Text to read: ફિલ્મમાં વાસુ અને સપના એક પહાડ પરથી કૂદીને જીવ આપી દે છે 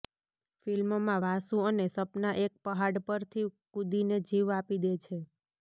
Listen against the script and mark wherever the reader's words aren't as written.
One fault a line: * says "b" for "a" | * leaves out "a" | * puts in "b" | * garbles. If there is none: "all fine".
all fine